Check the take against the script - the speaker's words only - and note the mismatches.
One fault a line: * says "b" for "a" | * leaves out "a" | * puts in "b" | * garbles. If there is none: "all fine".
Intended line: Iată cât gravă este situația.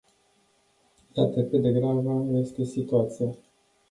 * puts in "de"